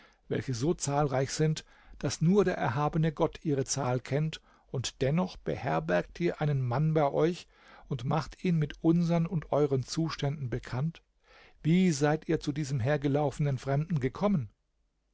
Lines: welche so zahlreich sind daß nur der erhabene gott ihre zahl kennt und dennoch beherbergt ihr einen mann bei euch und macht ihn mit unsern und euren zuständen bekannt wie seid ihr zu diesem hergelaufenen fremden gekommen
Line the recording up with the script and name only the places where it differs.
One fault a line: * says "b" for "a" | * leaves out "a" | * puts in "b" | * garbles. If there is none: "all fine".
all fine